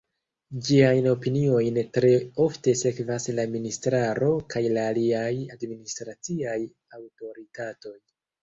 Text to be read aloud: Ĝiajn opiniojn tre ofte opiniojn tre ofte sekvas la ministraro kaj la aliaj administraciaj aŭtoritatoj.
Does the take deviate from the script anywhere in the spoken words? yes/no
yes